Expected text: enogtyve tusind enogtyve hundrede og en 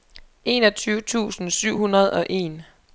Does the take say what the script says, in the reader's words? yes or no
no